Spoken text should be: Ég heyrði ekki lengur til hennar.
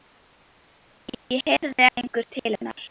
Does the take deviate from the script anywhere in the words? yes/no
yes